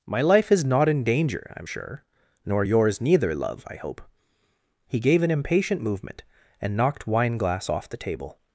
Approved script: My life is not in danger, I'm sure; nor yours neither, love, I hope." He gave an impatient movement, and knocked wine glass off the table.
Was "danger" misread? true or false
false